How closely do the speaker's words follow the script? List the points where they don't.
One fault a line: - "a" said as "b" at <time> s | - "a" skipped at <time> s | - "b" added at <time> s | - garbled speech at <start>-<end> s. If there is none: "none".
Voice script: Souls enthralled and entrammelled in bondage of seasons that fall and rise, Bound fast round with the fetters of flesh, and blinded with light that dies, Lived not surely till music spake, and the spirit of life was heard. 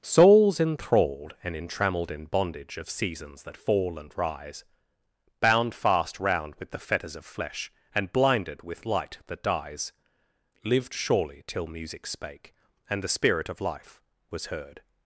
- "not" skipped at 10.9 s